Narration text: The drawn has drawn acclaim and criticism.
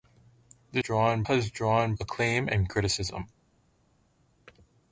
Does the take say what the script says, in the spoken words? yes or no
yes